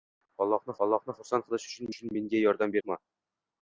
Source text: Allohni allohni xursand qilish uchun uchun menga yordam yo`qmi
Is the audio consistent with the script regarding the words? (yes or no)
yes